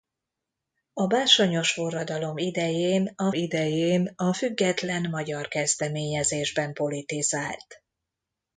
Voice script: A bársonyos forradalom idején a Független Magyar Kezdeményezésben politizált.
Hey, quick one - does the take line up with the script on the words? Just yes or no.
no